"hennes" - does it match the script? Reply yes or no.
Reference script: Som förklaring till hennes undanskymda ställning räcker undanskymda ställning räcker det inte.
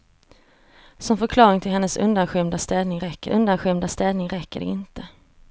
yes